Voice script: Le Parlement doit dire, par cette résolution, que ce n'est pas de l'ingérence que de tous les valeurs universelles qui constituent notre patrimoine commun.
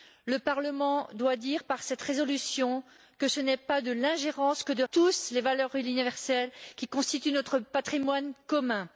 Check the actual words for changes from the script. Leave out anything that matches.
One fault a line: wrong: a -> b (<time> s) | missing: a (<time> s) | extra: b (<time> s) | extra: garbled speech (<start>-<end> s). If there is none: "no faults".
no faults